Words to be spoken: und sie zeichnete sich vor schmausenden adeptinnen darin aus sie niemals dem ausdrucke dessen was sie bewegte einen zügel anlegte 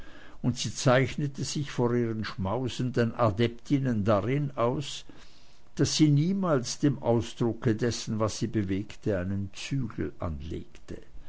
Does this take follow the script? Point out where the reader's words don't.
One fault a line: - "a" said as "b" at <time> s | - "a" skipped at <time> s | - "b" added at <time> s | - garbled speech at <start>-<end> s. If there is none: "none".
- "ihren" added at 1.9 s
- "daß" added at 5.8 s